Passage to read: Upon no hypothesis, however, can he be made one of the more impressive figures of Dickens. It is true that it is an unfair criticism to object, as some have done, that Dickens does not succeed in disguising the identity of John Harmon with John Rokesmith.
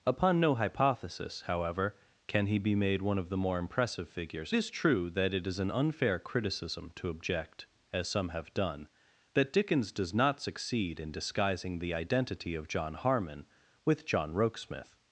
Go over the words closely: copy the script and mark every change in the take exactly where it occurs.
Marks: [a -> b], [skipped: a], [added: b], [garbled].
Upon no hypothesis, however, can he be made one of the more impressive figures [skipped: of Dickens. It] is true that it is an unfair criticism to object, as some have done, that Dickens does not succeed in disguising the identity of John Harmon with John Rokesmith.